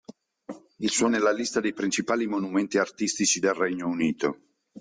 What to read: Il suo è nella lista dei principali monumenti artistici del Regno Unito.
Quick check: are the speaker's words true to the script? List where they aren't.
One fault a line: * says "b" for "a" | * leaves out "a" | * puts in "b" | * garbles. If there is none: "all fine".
all fine